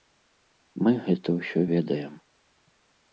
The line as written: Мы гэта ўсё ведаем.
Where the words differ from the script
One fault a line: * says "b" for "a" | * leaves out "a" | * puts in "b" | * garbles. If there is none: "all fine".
all fine